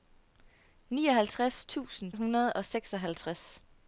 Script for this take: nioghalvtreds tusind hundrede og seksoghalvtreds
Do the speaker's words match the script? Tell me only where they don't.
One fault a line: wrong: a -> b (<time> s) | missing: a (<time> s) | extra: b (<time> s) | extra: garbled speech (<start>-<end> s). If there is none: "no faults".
no faults